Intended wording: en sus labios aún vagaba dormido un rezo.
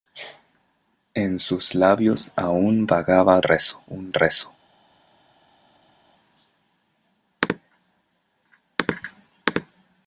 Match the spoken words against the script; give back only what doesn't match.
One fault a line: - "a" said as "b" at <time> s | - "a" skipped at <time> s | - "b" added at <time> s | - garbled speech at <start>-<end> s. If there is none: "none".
- "dormido" said as "rezo" at 3.4 s